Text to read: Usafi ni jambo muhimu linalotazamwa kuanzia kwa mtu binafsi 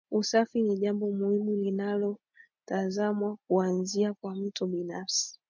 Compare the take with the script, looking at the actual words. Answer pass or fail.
pass